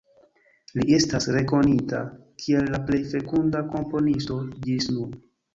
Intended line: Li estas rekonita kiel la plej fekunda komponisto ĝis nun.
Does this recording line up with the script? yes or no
yes